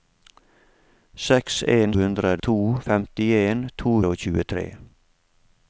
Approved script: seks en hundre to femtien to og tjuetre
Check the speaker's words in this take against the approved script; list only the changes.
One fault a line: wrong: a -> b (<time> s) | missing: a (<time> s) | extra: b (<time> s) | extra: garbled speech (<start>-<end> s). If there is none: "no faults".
no faults